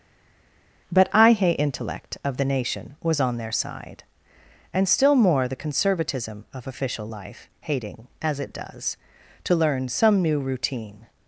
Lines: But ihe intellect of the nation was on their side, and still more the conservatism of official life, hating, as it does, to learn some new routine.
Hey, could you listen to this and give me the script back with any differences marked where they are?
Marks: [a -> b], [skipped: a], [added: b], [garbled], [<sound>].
But ihe intellect of the nation was on their side, and still more the conservatism of official life, hating, as it does, to learn some new routine.